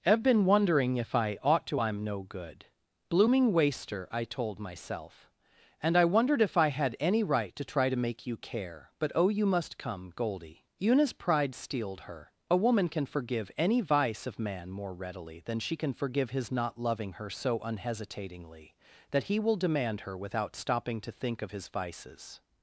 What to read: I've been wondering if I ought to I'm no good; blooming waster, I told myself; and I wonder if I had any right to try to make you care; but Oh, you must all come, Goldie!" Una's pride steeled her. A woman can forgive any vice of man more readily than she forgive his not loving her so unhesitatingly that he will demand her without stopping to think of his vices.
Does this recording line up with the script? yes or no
no